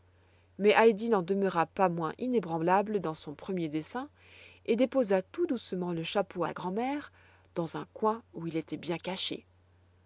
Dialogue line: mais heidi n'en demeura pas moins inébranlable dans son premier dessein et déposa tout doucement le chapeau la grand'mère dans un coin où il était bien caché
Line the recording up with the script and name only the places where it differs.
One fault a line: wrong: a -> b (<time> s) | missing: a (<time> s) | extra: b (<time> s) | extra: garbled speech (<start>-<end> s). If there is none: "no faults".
no faults